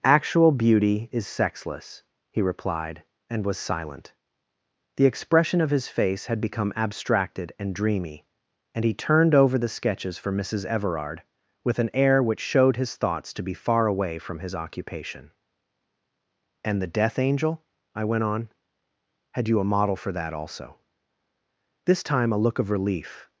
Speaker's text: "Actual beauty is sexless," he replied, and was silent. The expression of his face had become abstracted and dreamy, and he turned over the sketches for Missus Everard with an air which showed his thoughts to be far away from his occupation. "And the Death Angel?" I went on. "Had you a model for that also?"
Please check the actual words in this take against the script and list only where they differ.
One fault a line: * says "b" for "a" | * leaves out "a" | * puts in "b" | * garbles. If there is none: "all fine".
* puts in "This time a look of relief"